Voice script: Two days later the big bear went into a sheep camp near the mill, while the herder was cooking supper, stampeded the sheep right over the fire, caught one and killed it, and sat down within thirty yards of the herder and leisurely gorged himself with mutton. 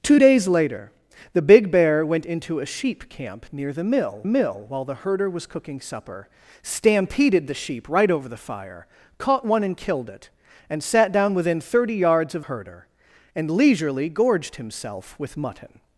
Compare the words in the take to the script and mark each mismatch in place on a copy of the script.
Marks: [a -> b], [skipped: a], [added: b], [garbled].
Two days later the big bear went into a sheep camp near the mill, [added: mill] while the herder was cooking supper, stampeded the sheep right over the fire, caught one and killed it, and sat down within thirty yards of [skipped: the] herder and leisurely gorged himself with mutton.